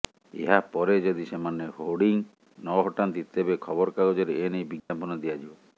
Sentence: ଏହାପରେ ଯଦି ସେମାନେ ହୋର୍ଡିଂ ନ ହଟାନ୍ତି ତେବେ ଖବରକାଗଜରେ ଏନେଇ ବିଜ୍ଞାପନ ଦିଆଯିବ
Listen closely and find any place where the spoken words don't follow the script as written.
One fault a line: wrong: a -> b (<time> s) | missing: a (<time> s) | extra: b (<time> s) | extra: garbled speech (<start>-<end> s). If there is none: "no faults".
no faults